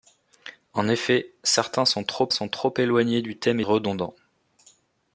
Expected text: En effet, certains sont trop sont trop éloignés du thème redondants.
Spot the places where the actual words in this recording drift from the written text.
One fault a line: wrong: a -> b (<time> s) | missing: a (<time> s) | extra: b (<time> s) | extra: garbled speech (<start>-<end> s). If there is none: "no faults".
no faults